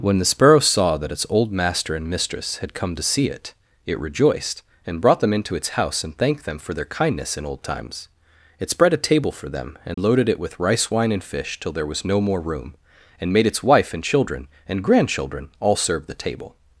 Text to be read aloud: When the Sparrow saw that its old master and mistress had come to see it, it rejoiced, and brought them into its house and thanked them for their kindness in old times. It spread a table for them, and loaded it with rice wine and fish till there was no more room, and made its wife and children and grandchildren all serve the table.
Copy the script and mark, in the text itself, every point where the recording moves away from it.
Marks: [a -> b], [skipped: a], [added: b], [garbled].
When the Sparrow saw that its old master and mistress had come to see it, it rejoiced, and brought them into its house and thanked them for their kindness in old times. It spread a table for them, and loaded it with rice wine and fish till there was no more room, and made its wife and children and grandchildren all serve the table.